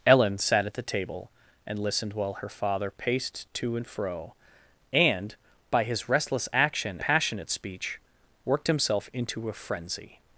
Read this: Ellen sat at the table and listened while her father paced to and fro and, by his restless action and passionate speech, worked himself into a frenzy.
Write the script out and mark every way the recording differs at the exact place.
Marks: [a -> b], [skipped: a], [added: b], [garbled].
Ellen sat at the table and listened while her father paced to and fro and, by his restless action [skipped: and] passionate speech, worked himself into a frenzy.